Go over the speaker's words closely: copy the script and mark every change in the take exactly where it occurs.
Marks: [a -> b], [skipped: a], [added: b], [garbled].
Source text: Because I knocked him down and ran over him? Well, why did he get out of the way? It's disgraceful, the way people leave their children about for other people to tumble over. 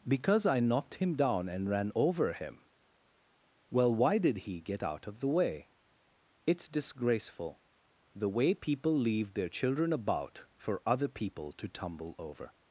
Because I knocked him down and ran over him? Well, why did he get out of the way? It's disgraceful, the way people leave their children about for other people to tumble over.